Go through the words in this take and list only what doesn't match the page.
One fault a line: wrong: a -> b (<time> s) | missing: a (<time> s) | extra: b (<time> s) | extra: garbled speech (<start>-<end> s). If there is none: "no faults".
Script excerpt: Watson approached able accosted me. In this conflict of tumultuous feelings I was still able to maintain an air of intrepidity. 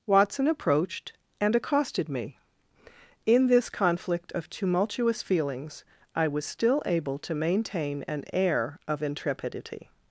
wrong: able -> and (1.4 s)